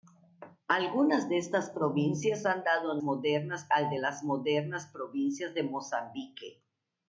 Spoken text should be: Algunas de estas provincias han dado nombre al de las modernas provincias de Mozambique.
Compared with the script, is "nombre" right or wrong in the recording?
wrong